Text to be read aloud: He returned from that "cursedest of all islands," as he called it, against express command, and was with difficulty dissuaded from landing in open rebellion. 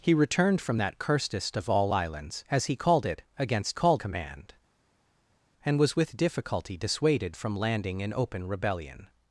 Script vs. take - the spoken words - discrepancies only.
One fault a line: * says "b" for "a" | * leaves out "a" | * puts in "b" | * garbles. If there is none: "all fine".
* says "called" for "express"